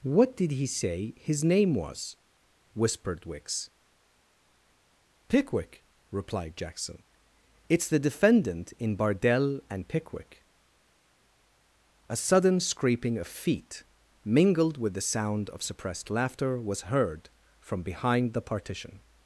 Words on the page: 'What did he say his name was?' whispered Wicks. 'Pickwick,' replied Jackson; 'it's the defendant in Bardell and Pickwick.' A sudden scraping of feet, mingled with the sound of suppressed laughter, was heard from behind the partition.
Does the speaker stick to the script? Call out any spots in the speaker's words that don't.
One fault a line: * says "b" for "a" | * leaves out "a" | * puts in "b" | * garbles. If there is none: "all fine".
all fine